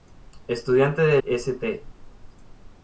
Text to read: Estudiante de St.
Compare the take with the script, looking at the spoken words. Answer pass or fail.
pass